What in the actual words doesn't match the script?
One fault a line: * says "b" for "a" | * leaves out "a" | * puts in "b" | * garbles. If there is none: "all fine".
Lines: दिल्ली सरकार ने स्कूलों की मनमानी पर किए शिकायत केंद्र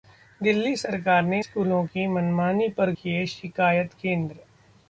all fine